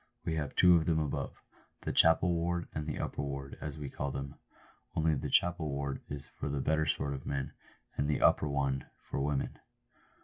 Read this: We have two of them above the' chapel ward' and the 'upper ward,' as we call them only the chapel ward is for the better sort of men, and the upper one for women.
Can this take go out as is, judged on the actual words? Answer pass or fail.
pass